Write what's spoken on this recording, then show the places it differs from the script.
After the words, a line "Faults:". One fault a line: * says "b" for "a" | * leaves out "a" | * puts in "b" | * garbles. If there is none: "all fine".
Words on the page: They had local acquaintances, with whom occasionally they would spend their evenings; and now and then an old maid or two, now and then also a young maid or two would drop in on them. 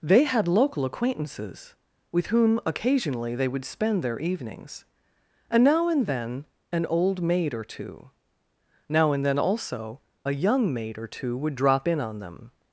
They had local acquaintances, with whom occasionally they would spend their evenings; and now and then an old maid or two, now and then also a young maid or two would drop in on them.
Faults:
all fine